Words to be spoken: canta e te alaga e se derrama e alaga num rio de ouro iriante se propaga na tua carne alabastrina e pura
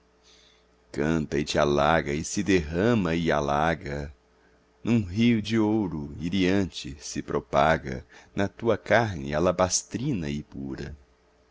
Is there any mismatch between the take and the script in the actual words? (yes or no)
no